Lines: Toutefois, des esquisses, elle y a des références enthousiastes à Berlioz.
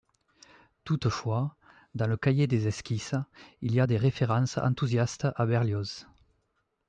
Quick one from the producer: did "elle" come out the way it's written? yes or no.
no